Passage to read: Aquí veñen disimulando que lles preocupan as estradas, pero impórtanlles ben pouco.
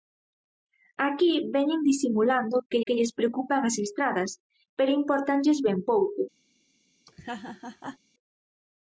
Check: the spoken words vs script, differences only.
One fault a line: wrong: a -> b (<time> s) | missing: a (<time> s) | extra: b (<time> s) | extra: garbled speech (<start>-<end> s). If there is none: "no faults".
extra: que (2.8 s)